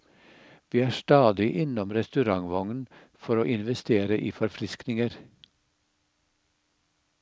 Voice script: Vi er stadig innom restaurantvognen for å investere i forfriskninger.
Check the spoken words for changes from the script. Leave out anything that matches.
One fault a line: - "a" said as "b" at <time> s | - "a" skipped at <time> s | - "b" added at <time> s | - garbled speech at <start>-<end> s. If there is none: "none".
none